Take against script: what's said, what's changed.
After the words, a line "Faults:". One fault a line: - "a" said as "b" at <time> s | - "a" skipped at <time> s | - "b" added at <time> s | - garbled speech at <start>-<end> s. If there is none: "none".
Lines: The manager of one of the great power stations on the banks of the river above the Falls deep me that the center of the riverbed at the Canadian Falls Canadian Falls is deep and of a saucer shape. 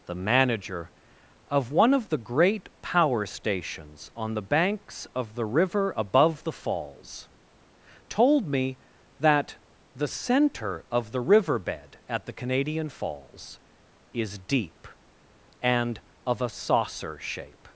The manager of one of the great power stations on the banks of the river above the Falls told me that the center of the riverbed at the Canadian Falls is deep and of a saucer shape.
Faults:
- "deep" said as "told" at 8.1 s
- "Canadian Falls" skipped at 13.6 s